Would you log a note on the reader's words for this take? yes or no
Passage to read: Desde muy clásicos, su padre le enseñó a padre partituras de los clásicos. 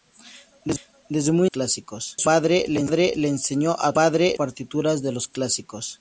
no